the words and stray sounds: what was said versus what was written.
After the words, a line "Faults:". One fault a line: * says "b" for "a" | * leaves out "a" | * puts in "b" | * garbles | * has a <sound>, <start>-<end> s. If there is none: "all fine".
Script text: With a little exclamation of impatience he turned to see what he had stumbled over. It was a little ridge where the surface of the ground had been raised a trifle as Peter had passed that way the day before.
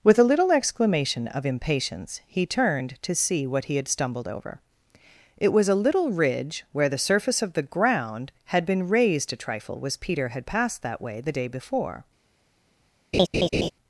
With a little exclamation of impatience he turned to see what he had stumbled over. It was a little ridge where the surface of the ground had been raised a trifle as Peter had passed that way the day before.
Faults:
* has a laugh, 13.1-13.7 s